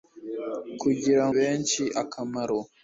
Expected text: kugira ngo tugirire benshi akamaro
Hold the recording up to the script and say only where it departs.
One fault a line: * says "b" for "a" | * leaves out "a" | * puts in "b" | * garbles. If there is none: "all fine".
* leaves out "ngo tugirire"